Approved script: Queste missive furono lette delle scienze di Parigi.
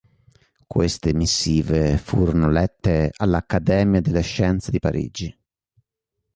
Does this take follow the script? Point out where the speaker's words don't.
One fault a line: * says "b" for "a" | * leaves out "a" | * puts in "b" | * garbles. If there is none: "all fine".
* puts in "all'Accademia"